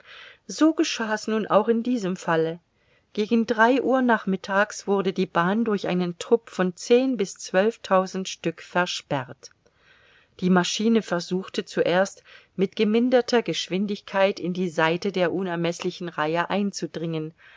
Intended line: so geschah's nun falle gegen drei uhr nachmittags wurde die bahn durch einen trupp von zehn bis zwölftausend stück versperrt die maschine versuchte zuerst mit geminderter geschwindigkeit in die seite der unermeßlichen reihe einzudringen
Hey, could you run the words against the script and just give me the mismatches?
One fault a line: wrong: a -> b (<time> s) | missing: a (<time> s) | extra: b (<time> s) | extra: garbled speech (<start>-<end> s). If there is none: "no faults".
extra: auch in diesem (1.4 s)